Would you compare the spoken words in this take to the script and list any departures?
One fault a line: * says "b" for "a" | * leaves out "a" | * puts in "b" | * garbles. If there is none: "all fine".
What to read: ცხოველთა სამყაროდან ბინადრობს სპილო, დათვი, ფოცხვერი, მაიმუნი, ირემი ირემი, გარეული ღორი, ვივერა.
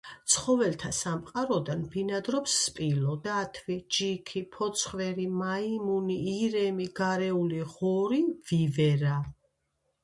* puts in "ჯიქი"
* leaves out "ირემი"